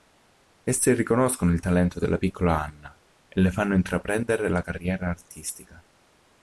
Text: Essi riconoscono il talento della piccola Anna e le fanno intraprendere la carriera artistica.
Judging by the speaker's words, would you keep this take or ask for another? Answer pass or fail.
pass